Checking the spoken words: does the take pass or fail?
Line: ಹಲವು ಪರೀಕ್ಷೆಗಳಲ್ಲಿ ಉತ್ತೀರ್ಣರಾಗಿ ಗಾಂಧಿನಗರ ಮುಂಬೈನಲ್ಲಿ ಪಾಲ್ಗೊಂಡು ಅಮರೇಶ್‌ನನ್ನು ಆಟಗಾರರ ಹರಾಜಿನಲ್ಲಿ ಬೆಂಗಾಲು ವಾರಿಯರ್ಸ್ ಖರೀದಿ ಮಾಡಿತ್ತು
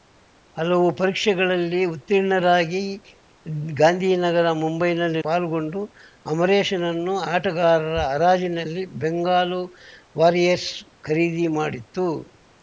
pass